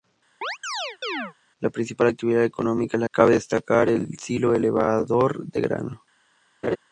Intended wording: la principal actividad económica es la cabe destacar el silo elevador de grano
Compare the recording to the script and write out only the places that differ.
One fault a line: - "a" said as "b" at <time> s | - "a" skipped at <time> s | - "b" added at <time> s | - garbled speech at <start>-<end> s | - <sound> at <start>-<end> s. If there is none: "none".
- chirp at 0.4-1.3 s
- laugh at 6.6-6.8 s